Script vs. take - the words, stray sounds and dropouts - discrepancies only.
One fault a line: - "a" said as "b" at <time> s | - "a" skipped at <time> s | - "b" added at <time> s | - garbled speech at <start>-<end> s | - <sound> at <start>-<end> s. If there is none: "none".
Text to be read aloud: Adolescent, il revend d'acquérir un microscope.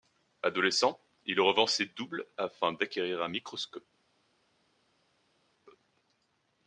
- "ses doubles afin" added at 1.7 s